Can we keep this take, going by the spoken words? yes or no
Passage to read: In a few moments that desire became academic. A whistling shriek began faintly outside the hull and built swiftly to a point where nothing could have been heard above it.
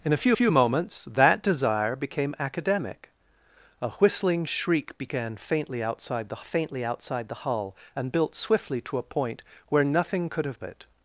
no